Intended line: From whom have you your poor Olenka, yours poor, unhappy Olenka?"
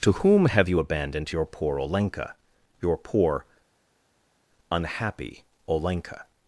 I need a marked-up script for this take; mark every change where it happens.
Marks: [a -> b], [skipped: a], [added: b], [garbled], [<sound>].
[From -> To] whom have you [added: abandoned] your poor Olenka, [yours -> your] poor, unhappy Olenka?"